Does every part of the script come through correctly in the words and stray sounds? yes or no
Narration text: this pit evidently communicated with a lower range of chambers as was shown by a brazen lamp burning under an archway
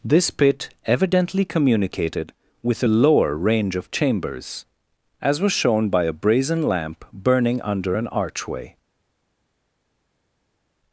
yes